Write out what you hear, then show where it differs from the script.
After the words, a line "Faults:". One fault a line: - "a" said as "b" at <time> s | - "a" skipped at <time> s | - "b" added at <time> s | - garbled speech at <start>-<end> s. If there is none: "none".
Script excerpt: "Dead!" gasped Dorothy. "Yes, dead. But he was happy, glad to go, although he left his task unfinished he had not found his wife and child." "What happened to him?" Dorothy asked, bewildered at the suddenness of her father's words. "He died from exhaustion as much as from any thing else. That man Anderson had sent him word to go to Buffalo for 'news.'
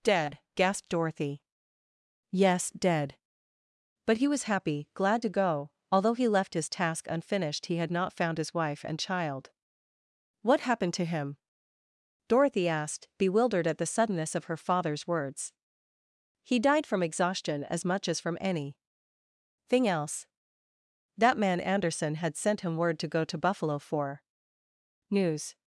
"Dead!" gasped Dorothy. "Yes, dead. But he was happy, glad to go, although he left his task unfinished he had not found his wife and child." "What happened to him?" Dorothy asked, bewildered at the suddenness of her father's words. "He died from exhaustion as much as from any thing else. That man Anderson had sent him word to go to Buffalo for 'news.'
Faults:
none